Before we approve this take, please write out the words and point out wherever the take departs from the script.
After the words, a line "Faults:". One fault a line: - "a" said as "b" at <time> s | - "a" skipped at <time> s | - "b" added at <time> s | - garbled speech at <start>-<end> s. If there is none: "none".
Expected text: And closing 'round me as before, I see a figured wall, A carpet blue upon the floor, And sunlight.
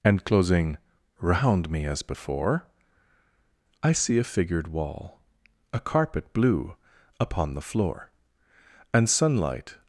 And closing 'round me as before, I see a figured wall, A carpet blue upon the floor, And sunlight.
Faults:
none